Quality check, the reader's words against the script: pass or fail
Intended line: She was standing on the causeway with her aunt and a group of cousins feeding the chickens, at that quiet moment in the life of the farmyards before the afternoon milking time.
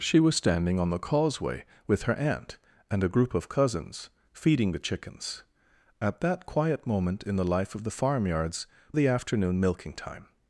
fail